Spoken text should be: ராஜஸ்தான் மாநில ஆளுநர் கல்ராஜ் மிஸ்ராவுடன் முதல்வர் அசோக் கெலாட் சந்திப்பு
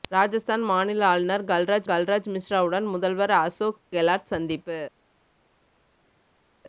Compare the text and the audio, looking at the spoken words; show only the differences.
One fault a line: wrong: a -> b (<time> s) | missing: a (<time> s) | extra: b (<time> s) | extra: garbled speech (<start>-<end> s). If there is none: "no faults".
extra: கல்ராஜ் (1.8 s)